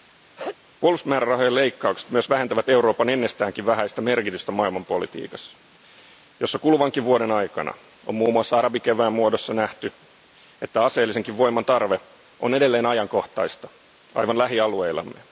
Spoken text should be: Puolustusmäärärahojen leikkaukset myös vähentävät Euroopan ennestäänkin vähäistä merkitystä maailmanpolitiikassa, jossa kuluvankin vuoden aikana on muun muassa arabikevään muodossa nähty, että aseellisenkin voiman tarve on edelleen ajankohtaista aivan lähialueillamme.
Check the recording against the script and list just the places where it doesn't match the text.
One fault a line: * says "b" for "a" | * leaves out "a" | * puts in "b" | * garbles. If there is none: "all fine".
all fine